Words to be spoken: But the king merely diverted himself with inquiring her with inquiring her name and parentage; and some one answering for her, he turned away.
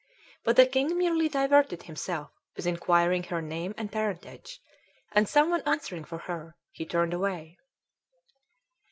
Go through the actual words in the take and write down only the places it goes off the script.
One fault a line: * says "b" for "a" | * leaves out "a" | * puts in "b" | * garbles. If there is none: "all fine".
* leaves out "with inquiring her"